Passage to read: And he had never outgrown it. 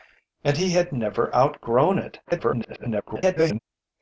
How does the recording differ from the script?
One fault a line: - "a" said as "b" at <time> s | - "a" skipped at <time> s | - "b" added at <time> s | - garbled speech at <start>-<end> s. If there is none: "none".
- garbled speech at 2.2-3.6 s